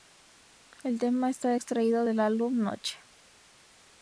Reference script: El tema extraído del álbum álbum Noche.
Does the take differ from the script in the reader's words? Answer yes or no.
yes